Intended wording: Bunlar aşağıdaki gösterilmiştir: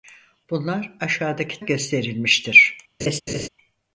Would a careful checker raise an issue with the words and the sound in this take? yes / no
yes